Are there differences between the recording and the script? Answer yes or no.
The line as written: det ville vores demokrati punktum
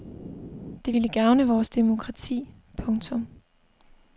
yes